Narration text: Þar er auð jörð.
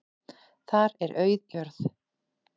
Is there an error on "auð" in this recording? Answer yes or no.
no